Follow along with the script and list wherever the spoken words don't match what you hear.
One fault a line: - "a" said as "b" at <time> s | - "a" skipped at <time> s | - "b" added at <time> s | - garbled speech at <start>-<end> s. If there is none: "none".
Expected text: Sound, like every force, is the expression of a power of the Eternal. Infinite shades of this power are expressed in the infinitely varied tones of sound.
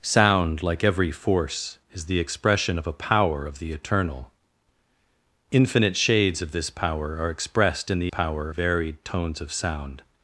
- "infinitely" said as "power" at 8.1 s